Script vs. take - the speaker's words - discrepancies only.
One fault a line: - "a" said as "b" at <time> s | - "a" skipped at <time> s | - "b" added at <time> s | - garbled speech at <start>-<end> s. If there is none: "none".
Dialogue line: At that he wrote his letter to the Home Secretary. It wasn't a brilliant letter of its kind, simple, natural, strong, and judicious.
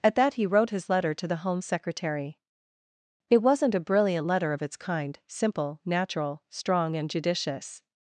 none